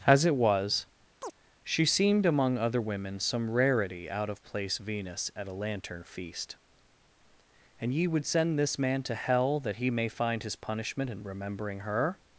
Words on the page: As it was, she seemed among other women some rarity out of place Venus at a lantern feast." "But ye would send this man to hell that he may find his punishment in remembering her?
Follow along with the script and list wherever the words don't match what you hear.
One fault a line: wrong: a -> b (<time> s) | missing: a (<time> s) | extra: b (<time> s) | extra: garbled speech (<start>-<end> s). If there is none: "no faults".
wrong: But -> And (7.8 s)